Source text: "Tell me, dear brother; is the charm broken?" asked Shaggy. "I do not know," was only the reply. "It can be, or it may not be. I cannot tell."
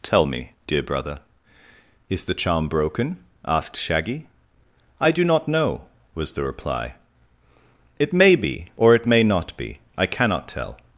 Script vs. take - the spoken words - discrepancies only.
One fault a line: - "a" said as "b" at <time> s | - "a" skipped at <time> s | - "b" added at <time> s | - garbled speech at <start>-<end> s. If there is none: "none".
- "only" skipped at 6.3 s
- "can" said as "may" at 8.1 s